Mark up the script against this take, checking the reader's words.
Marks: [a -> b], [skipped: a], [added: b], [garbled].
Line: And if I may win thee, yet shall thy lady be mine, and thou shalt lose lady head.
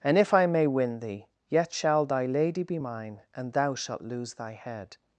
And if I may win thee, yet shall thy lady be mine, and thou shalt lose [lady -> thy] head.